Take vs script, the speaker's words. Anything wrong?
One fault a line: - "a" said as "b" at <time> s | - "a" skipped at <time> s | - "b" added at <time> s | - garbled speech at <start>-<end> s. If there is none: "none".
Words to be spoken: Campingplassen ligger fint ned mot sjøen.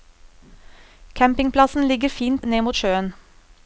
none